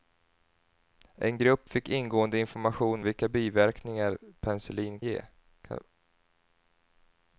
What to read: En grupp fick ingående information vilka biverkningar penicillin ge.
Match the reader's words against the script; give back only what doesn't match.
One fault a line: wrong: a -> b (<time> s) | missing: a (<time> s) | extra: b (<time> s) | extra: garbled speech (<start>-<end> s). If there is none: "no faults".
no faults